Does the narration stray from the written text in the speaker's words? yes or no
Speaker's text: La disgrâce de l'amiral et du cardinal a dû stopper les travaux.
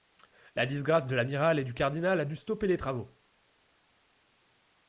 no